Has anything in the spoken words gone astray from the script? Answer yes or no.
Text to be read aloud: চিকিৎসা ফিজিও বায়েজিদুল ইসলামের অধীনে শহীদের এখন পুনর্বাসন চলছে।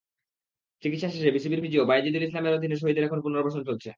yes